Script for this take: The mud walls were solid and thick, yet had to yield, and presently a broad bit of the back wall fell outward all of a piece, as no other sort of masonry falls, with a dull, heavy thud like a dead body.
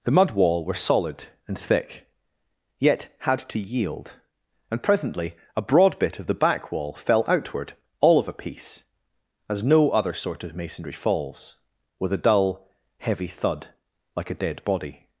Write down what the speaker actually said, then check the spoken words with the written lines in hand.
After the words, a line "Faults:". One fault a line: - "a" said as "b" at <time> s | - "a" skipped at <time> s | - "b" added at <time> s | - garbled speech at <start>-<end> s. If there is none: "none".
The mud wall were solid and thick, yet had to yield, and presently a broad bit of the back wall fell outward all of a piece, as no other sort of masonry falls, with a dull, heavy thud like a dead body.
Faults:
- "walls" said as "wall" at 0.3 s